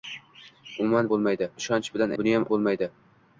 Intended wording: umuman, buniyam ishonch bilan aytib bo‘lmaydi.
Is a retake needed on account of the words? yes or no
yes